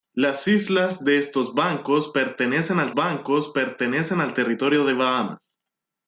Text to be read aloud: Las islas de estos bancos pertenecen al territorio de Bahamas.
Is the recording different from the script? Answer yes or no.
yes